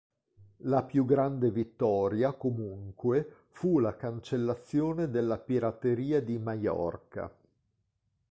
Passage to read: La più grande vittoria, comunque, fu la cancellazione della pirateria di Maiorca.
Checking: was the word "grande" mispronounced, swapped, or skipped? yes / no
no